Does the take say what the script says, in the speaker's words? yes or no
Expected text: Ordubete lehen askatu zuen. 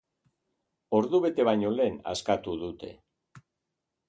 no